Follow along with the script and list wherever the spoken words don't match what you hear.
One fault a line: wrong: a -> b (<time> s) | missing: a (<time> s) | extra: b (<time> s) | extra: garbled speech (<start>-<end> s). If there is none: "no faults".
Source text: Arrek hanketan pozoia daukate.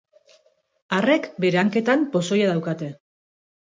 extra: bere (1.5 s)